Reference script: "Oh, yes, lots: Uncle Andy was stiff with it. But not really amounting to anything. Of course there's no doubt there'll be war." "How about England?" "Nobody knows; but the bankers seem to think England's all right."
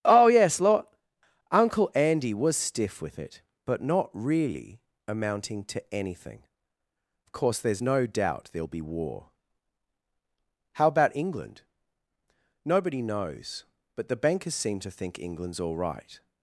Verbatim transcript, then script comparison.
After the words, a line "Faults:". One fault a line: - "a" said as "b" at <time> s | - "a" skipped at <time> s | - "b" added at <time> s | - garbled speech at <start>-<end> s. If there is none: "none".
"Oh, yes, lot: Uncle Andy was stiff with it. But not really amounting to anything. Of course there's no doubt there'll be war." "How about England?" "Nobody knows; but the bankers seem to think England's all right."
Faults:
- "lots" said as "lot" at 0.6 s